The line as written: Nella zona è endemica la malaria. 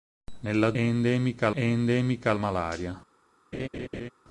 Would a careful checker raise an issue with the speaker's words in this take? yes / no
yes